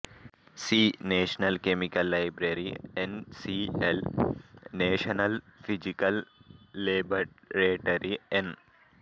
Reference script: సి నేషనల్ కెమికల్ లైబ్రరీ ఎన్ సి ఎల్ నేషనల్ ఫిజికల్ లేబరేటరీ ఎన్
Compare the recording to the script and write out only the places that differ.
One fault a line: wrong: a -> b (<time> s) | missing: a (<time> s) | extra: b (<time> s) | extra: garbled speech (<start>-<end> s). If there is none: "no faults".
no faults